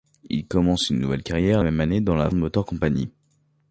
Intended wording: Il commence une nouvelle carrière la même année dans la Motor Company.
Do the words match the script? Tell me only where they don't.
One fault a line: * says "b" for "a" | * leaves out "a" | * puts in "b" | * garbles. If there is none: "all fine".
all fine